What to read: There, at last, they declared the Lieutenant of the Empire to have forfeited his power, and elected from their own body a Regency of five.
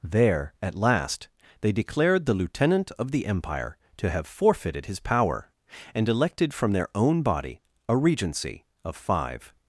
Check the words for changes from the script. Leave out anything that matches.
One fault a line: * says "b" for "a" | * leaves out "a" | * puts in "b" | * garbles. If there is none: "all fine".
all fine